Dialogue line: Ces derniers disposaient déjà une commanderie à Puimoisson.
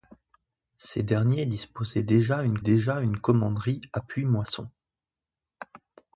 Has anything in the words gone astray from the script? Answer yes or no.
yes